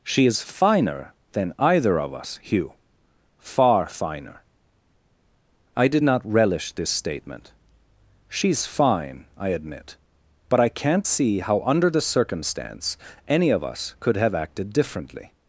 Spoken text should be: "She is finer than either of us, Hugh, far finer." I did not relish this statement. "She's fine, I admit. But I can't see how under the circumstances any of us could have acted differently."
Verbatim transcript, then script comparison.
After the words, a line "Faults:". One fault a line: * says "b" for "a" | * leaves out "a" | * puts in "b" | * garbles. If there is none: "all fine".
"She is finer than either of us, Hugh, far finer." I did not relish this statement. "She's fine, I admit. But I can't see how under the circumstance any of us could have acted differently."
Faults:
* says "circumstance" for "circumstances"